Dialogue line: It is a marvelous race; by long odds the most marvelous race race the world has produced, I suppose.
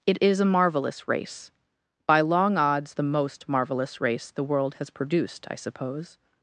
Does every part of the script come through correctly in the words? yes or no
no